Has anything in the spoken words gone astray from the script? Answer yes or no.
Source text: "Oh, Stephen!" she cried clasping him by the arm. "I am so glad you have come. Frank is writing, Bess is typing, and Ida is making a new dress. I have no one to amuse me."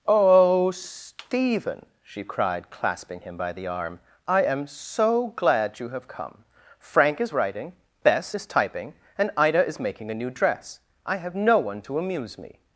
no